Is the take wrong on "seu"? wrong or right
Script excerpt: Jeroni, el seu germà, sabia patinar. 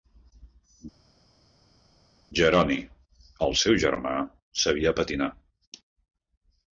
right